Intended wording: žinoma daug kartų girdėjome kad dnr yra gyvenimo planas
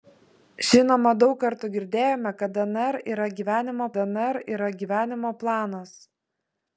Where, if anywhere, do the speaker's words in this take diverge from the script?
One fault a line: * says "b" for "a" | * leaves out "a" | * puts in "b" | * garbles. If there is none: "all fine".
* puts in "dnr yra gyvenimo"